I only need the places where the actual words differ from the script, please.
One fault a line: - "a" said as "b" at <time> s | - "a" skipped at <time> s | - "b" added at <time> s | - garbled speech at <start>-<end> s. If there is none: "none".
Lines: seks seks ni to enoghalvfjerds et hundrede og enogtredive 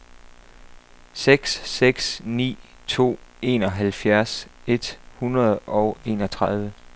none